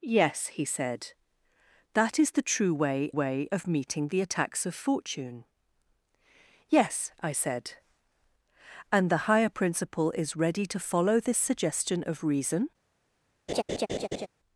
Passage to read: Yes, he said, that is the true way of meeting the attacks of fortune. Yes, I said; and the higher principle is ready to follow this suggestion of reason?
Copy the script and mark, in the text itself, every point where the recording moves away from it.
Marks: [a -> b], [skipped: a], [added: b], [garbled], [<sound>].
Yes, he said, that is the true way [added: way] of meeting the attacks of fortune. Yes, I said; and the higher principle is ready to follow this suggestion of reason? [laugh]